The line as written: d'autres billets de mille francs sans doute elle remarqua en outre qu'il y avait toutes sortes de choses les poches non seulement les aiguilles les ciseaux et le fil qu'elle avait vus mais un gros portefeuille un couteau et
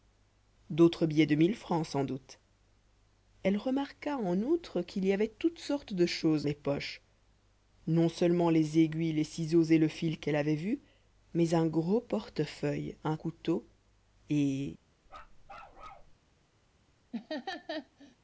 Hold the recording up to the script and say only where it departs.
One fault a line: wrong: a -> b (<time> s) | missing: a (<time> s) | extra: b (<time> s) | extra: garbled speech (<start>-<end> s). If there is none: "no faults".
no faults